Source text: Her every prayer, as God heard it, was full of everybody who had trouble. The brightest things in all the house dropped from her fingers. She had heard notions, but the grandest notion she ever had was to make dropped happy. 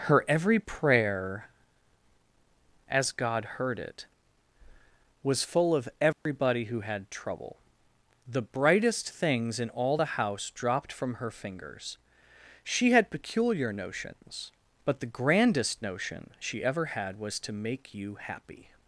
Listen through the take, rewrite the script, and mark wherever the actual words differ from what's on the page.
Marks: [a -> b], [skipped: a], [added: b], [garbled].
Her every prayer, as God heard it, was full of everybody who had trouble. The brightest things in all the house dropped from her fingers. She had [heard -> peculiar] notions, but the grandest notion she ever had was to make [dropped -> you] happy.